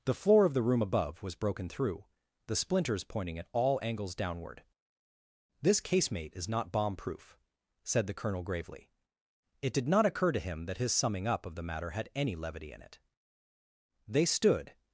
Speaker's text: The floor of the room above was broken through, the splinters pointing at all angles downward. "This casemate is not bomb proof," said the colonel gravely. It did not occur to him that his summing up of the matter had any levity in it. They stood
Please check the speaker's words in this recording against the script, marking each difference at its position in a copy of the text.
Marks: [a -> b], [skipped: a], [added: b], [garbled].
The floor of the room above was broken through, the splinters pointing at all angles downward. "This casemate is not bomb proof," said the colonel gravely. It did not occur to him that his summing up of the matter had any levity in it. They stood